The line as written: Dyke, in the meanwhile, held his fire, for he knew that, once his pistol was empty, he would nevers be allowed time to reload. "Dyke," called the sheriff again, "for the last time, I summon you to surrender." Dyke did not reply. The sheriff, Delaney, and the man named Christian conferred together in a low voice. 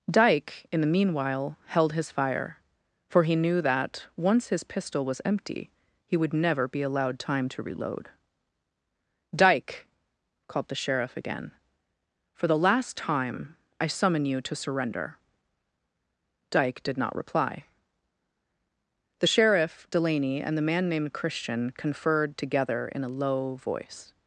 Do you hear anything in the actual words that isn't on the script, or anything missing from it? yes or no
yes